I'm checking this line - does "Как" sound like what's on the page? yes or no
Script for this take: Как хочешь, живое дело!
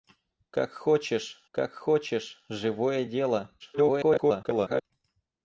yes